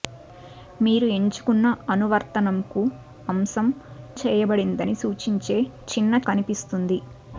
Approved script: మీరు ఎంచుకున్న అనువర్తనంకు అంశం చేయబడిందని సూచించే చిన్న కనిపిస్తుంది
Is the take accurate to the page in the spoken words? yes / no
yes